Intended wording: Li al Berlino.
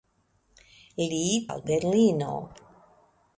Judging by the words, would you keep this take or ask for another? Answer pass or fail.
pass